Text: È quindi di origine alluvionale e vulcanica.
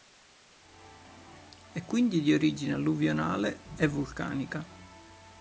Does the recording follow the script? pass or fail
pass